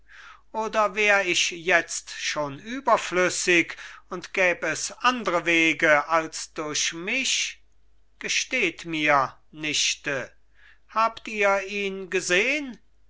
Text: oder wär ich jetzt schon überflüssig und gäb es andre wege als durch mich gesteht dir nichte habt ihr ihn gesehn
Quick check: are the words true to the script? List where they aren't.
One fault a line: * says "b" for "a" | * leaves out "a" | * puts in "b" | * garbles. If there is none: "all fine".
* says "mir" for "dir"